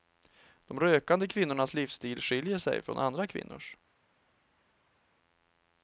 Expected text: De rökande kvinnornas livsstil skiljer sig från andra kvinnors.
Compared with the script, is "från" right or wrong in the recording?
right